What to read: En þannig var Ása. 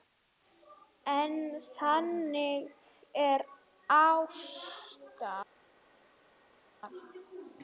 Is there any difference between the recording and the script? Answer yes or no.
no